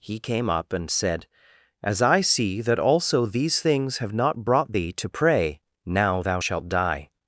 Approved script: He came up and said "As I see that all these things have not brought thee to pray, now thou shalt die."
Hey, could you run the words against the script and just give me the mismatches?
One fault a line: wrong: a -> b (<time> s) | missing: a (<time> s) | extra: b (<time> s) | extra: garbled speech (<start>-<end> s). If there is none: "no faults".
wrong: all -> also (2.8 s)